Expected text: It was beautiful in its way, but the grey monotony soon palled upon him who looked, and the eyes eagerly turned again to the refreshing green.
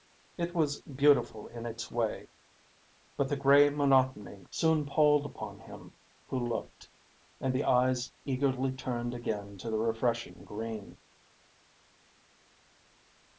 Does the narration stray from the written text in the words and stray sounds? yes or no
no